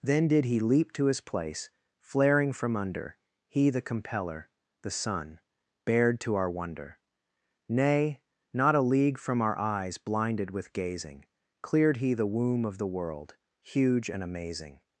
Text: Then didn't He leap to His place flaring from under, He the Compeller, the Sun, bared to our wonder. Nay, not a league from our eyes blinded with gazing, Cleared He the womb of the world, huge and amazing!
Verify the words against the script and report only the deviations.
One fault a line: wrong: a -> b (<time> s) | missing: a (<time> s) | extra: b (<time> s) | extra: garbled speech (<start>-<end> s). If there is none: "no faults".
wrong: didn't -> did (0.3 s)